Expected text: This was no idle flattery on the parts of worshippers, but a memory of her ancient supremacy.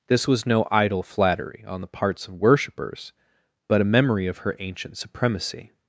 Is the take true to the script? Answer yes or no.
yes